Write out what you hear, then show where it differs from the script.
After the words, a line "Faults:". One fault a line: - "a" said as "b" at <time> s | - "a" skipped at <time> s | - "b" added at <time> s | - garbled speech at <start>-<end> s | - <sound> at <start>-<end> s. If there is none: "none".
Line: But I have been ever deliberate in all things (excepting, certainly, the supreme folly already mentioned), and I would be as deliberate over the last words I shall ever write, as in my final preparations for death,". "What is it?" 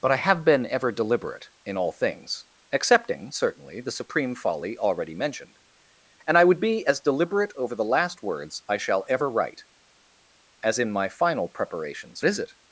But I have been ever deliberate in all things (excepting, certainly, the supreme folly already mentioned), and I would be as deliberate over the last words I shall ever write, as in my final preparations is it?"
Faults:
- "for death What" skipped at 12.2 s